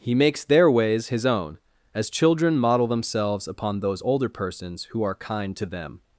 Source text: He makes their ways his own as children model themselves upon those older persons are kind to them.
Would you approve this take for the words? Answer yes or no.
no